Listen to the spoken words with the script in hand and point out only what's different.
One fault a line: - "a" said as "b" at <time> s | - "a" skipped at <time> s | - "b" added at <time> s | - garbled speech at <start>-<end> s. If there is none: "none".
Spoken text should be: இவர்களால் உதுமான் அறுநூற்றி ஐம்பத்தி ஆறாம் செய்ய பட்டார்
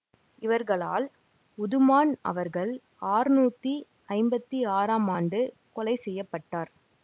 - "அவர்கள்" added at 2.2 s
- "ஆண்டு கொலை" added at 5.1 s